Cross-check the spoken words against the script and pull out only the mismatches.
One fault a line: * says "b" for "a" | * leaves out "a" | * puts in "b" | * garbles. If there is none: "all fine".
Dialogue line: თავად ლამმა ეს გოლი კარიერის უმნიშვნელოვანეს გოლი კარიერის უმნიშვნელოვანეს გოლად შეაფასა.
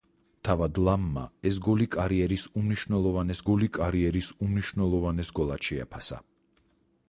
all fine